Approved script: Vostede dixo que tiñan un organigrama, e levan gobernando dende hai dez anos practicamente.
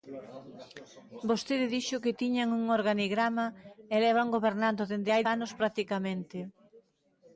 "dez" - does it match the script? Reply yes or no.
no